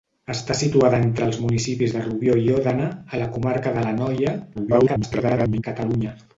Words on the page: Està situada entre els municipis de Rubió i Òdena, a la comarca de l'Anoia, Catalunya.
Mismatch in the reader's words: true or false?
true